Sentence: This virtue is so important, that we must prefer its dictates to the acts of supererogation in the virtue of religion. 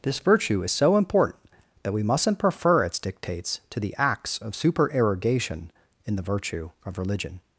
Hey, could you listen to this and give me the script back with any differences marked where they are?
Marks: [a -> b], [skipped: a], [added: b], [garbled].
This virtue is so important, that we [must -> mustn't] prefer its dictates to the acts of supererogation in the virtue of religion.